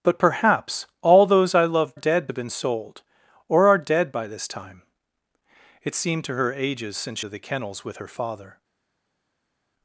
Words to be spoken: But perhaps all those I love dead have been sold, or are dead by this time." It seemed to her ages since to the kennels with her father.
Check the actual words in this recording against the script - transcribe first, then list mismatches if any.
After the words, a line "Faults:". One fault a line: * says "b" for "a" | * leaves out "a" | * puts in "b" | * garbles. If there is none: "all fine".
But perhaps all those I love dead have been sold, or are dead by this time." It seemed to her ages since to the kennels with her father.
Faults:
all fine